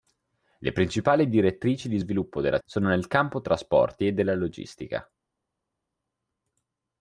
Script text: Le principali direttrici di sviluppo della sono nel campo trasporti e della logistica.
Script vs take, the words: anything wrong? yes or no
no